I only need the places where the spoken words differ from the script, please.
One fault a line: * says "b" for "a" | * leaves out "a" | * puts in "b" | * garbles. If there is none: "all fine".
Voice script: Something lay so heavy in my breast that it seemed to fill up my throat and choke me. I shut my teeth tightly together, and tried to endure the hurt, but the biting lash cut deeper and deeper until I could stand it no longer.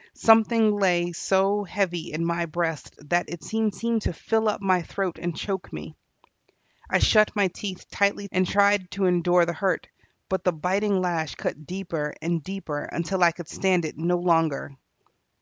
* puts in "seemed"
* leaves out "together"